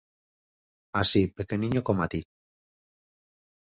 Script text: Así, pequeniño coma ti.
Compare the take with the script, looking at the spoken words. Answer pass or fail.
pass